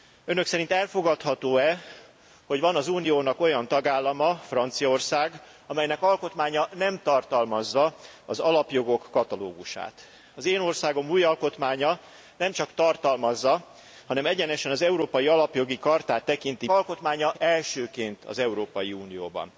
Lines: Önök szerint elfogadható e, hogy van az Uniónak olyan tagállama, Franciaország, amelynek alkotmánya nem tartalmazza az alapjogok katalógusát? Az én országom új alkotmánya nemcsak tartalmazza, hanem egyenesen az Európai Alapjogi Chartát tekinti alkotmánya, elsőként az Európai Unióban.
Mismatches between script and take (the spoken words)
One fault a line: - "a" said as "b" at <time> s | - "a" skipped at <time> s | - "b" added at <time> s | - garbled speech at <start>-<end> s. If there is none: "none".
none